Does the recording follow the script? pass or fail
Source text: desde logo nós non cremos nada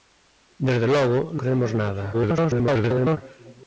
fail